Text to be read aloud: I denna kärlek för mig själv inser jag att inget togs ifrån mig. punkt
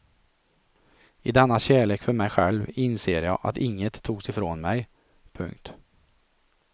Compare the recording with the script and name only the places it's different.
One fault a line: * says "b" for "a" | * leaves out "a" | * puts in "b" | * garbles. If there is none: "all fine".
all fine